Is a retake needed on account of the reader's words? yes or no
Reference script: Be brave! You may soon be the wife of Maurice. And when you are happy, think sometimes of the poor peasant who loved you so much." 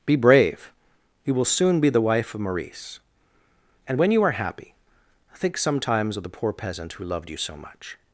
yes